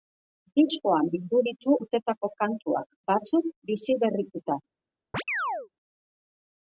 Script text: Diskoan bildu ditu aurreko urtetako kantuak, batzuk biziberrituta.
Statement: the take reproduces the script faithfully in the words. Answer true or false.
false